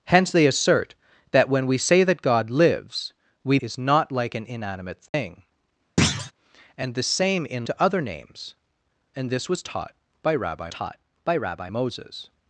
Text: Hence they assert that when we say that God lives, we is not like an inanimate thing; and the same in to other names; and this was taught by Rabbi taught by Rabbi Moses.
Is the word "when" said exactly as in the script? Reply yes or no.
yes